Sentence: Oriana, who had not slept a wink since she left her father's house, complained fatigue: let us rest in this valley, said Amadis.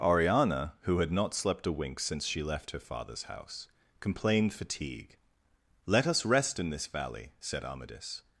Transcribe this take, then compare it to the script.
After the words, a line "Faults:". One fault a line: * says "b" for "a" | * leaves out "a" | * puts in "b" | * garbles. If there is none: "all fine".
Oriana, who had not slept a wink since she left her father's house, complained fatigue: let us rest in this valley, said Amadis.
Faults:
all fine